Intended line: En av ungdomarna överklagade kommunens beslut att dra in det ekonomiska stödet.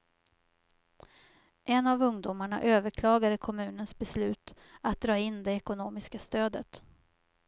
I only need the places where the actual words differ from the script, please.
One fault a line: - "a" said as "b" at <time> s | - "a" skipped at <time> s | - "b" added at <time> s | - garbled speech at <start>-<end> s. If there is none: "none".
none